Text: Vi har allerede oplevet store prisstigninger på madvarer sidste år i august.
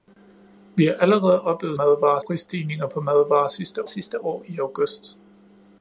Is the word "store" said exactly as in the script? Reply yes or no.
no